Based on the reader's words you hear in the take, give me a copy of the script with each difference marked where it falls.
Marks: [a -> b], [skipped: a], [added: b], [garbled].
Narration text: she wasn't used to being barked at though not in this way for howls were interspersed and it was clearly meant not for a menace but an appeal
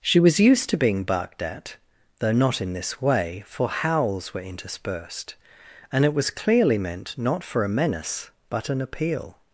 she [wasn't -> was] used to being barked at though not in this way for howls were interspersed and it was clearly meant not for a menace but an appeal